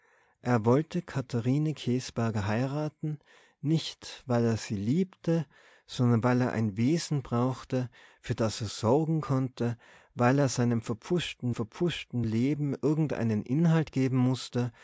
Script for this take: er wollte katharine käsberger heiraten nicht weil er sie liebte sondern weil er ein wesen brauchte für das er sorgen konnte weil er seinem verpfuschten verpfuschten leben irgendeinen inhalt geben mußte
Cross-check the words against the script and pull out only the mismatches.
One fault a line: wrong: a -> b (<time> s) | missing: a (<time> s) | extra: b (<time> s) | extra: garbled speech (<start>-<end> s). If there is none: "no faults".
no faults